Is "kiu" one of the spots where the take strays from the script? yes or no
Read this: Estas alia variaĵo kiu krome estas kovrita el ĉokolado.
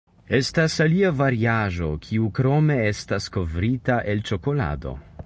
no